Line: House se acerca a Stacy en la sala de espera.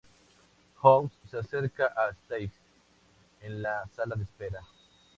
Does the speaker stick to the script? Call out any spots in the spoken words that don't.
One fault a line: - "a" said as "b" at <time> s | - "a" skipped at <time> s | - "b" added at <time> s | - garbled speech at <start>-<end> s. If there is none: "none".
none